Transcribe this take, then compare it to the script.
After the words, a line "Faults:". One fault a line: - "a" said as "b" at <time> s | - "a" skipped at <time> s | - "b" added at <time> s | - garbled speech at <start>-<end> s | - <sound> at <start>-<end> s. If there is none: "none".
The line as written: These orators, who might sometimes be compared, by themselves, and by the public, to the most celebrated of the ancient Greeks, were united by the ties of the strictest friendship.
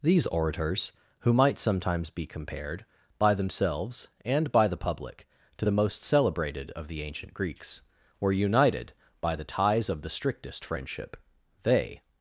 These orators, who might sometimes be compared, by themselves, and by the public, to the most celebrated of the ancient Greeks, were united by the ties of the strictest friendship. They
Faults:
- "They" added at 11.6 s